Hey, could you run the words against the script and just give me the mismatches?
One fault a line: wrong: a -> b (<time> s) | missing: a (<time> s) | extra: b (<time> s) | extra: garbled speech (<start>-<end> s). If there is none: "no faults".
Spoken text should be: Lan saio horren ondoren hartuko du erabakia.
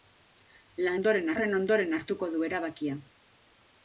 wrong: saio -> ondoren (0.9 s)